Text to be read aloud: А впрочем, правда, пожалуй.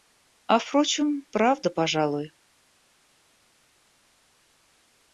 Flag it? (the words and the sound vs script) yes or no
no